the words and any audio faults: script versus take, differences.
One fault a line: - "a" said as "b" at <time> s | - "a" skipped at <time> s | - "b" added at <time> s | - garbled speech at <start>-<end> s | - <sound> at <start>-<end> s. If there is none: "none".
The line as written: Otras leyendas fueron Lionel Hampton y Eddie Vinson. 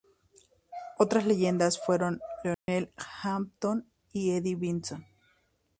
- dropout at 2.5-2.7 s